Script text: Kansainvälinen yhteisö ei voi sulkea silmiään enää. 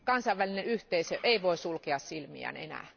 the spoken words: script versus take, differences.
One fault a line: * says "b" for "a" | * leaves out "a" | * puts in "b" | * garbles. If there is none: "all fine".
all fine